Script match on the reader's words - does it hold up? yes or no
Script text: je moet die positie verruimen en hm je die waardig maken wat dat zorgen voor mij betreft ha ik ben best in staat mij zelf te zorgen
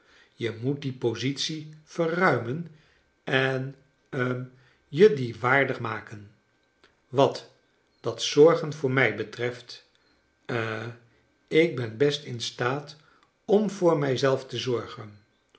no